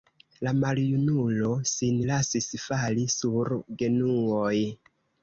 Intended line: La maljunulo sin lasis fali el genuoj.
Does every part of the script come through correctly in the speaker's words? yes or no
no